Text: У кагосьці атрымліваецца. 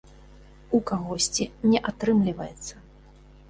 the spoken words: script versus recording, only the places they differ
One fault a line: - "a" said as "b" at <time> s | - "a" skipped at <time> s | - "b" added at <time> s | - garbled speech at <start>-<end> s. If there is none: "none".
- "не" added at 1.7 s